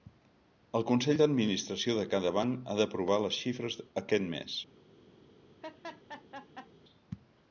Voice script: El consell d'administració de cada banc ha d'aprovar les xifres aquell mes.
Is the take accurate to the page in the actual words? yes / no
no